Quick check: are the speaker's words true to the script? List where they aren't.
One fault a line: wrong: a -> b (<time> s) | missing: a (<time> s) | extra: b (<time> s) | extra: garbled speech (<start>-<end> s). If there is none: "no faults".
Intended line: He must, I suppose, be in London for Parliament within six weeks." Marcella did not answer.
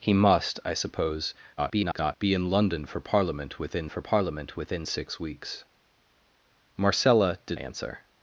extra: garbled speech (1.6-2.2 s)
extra: for Parliament within (3.9 s)
missing: not (7.6 s)